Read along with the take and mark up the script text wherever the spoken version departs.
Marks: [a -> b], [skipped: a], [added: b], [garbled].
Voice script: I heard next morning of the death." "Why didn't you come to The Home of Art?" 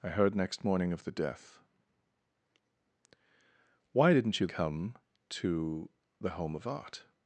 I heard next morning of the death." "Why didn't you come to The Home of Art?"